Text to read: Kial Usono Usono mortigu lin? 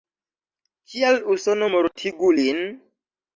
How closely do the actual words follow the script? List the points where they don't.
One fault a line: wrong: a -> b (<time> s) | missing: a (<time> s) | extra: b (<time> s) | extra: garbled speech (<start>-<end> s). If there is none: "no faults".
missing: Usono (1.7 s)